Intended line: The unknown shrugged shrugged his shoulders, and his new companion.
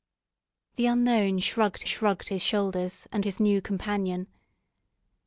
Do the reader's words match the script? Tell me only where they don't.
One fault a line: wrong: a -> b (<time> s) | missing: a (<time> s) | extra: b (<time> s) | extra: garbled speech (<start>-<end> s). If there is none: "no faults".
no faults